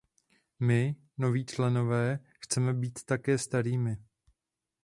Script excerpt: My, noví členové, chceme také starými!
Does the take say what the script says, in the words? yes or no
no